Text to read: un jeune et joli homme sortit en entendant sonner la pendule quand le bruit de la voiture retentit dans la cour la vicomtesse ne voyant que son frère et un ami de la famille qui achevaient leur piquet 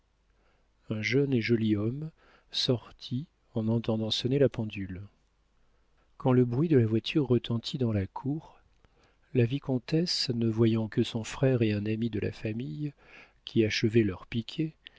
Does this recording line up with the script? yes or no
yes